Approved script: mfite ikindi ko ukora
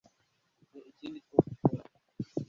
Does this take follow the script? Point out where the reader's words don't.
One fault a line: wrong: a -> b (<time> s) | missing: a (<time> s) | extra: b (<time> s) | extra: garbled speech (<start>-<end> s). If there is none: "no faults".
no faults